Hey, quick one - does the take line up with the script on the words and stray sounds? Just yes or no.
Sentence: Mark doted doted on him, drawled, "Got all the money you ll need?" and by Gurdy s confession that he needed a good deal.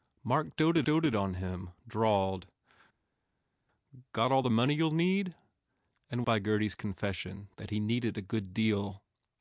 yes